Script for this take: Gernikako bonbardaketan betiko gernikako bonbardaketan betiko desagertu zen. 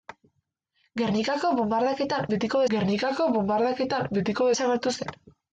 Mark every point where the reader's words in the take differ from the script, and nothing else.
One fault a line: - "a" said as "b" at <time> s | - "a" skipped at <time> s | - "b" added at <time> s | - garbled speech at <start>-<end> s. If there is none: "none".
none